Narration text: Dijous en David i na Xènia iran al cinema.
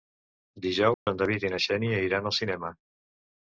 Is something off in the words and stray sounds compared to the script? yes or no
yes